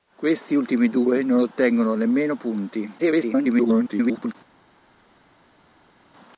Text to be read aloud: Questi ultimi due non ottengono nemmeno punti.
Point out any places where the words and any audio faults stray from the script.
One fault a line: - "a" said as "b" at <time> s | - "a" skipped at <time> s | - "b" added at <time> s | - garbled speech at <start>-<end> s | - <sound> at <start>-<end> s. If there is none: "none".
- garbled speech at 3.0-4.3 s